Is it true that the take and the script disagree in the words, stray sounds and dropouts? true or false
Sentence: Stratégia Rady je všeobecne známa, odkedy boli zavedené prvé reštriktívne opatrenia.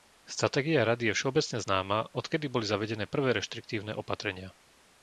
false